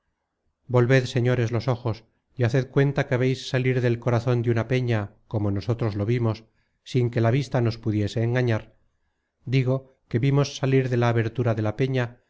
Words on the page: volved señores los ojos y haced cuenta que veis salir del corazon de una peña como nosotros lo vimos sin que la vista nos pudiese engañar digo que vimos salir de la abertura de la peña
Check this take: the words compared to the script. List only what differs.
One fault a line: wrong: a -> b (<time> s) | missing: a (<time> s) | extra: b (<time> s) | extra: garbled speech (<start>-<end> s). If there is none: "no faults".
no faults